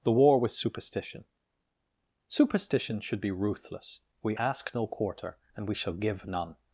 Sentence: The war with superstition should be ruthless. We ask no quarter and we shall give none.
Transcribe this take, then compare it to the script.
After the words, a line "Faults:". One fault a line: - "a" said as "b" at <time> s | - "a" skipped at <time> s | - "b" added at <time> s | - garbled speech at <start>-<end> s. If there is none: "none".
The war with superstition superstition should be ruthless. We ask no quarter and we shall give none.
Faults:
- "superstition" added at 2.3 s